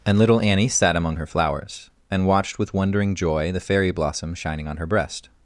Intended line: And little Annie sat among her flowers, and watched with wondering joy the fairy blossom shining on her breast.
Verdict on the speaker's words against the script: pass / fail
pass